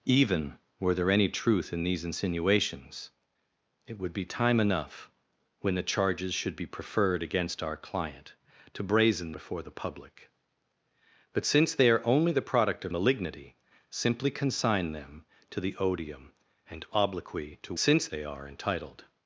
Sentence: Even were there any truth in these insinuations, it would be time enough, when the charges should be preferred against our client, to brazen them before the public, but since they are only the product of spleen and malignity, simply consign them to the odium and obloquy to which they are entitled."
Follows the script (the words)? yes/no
no